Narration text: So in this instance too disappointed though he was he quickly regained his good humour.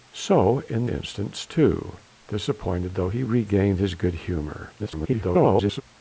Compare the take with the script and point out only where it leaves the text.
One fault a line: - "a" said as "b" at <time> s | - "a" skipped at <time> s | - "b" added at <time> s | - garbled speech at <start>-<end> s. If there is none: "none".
- "this" skipped at 0.9 s
- "was he quickly" skipped at 3.2 s
- garbled speech at 4.8-5.8 s